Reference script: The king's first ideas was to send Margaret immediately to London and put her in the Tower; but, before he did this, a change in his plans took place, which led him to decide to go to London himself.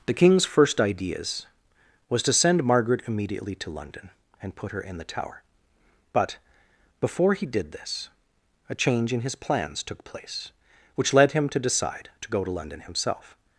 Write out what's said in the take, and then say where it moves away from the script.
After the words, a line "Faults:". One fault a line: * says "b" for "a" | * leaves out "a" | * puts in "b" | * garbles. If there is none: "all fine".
The king's first ideas was to send Margaret immediately to London and put her in the Tower; but, before he did this, a change in his plans took place, which led him to decide to go to London himself.
Faults:
all fine